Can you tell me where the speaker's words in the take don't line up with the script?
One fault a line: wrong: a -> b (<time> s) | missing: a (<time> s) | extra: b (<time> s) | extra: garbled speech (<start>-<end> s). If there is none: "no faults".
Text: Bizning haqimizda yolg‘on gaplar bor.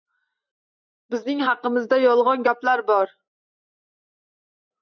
no faults